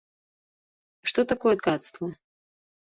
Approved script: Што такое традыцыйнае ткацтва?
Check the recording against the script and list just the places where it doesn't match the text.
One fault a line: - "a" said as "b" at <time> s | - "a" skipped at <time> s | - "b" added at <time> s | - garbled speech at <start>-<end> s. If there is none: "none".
- "традыцыйнае" skipped at 1.6 s